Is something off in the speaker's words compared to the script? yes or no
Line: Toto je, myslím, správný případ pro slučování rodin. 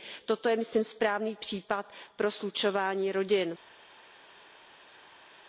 no